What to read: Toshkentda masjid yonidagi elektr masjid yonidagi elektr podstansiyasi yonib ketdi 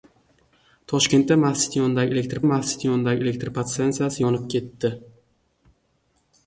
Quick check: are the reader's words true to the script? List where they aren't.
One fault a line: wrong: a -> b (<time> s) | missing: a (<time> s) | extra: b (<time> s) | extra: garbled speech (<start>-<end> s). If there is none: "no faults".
no faults